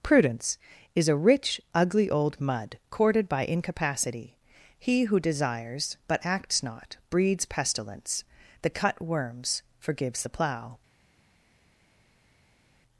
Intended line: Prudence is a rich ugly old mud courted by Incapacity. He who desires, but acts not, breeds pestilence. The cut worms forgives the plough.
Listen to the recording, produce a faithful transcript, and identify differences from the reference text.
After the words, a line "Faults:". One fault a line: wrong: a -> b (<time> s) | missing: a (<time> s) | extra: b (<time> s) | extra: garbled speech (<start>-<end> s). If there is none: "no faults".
Prudence is a rich ugly old mud courted by Incapacity. He who desires, but acts not, breeds pestilence. The cut worms forgives the plough.
Faults:
no faults